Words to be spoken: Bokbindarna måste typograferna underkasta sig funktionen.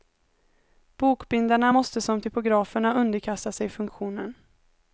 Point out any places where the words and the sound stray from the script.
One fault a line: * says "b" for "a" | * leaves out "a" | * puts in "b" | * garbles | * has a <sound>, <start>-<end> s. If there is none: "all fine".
* puts in "som"